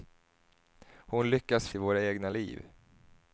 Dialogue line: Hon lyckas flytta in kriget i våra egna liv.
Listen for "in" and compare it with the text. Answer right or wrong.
wrong